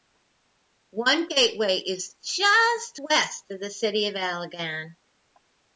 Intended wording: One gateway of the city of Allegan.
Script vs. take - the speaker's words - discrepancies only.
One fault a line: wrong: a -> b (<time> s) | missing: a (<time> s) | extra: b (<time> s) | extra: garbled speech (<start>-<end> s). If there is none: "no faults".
extra: is just west (1.8 s)